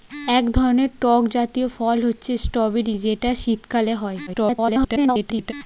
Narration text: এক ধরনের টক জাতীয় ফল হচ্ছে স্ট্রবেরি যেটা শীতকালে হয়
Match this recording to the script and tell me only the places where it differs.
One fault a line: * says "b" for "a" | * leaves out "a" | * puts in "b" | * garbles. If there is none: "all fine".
* garbles